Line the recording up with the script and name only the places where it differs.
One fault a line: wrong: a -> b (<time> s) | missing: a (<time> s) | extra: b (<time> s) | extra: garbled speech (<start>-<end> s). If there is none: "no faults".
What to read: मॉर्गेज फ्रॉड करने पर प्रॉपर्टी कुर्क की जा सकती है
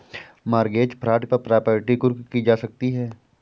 missing: करने (1.2 s)